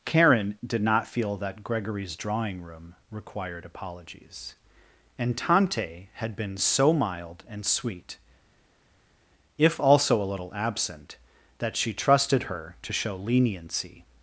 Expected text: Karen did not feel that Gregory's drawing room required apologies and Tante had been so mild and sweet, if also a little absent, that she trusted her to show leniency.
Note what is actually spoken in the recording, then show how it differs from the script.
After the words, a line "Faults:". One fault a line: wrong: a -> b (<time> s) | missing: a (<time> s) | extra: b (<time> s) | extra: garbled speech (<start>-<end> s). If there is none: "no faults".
Karen did not feel that Gregory's drawing room required apologies and Tante had been so mild and sweet, if also a little absent, that she trusted her to show leniency.
Faults:
no faults